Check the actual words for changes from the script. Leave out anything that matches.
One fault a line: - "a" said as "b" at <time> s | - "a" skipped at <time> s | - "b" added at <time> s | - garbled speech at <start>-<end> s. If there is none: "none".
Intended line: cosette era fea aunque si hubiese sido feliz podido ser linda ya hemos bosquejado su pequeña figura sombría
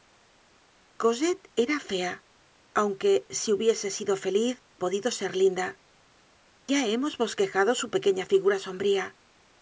none